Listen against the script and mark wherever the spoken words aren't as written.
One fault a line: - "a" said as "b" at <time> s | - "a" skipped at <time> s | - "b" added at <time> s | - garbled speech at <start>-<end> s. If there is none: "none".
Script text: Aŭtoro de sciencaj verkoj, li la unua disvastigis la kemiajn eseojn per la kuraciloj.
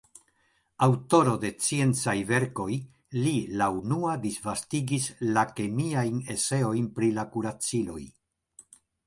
- "per" said as "pri" at 7.0 s